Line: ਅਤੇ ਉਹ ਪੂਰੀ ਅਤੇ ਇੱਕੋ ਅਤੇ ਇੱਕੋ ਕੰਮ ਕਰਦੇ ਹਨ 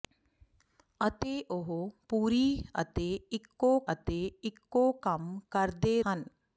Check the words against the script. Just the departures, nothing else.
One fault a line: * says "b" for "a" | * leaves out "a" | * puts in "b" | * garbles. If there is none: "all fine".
all fine